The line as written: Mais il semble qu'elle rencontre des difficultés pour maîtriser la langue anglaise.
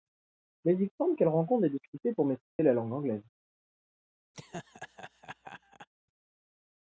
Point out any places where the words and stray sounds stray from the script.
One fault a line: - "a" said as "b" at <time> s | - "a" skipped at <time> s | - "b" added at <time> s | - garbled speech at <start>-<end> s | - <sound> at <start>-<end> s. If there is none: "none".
- dropout at 2.5-2.6 s
- laugh at 4.3-5.9 s